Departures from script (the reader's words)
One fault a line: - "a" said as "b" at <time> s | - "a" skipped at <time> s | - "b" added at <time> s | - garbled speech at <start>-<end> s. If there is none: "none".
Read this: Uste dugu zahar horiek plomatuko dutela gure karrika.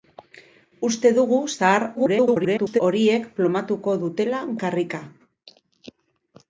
- garbled speech at 1.9-2.8 s
- "gure" skipped at 4.4 s